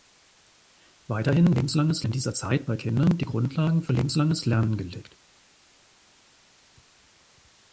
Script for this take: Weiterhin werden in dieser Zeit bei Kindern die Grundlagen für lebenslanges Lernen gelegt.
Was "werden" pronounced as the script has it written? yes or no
no